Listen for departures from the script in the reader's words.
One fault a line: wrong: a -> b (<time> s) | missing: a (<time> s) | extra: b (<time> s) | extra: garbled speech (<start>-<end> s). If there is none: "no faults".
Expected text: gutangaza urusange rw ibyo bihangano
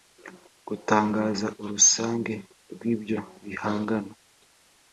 no faults